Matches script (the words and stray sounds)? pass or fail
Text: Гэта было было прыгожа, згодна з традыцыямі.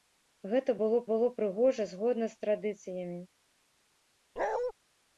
fail